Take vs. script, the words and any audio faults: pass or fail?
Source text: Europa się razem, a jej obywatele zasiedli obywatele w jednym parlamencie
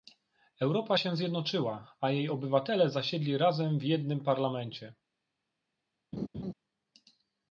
fail